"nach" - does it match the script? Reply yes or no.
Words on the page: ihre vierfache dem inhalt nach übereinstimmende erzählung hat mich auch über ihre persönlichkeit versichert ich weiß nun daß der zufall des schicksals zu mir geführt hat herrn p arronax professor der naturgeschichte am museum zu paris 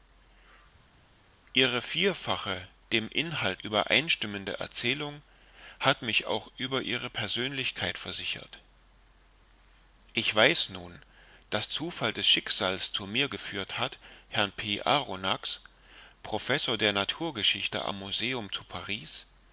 no